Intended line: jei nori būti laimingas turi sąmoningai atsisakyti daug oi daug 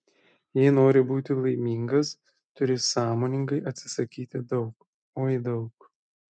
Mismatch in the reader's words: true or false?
false